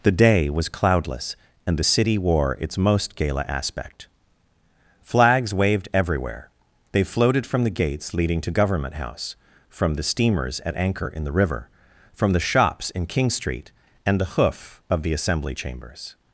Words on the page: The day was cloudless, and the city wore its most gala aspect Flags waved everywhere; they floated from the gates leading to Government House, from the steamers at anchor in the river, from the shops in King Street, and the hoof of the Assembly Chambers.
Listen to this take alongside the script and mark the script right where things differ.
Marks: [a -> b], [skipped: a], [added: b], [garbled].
The day was cloudless, and the city wore its most gala aspect Flags waved everywhere; they floated from the gates leading to Government House, from the steamers at anchor in the river, from the shops in King Street, and the hoof of the Assembly Chambers.